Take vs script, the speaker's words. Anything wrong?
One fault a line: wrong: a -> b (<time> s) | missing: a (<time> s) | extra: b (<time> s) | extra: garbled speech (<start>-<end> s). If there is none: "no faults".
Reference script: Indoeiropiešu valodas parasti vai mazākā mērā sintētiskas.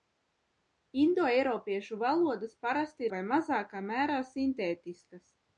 no faults